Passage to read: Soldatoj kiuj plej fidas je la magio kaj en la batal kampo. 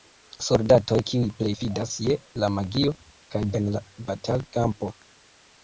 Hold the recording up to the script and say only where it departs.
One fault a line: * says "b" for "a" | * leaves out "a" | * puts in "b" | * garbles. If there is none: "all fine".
all fine